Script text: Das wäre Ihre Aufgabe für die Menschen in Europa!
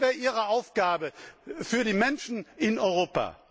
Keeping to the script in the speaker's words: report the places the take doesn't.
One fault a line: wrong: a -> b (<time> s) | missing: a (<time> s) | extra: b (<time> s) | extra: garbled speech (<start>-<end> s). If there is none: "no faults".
no faults